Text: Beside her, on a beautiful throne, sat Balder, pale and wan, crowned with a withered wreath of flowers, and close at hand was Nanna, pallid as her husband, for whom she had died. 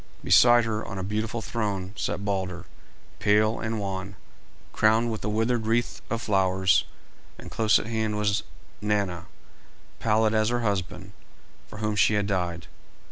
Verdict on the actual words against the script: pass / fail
pass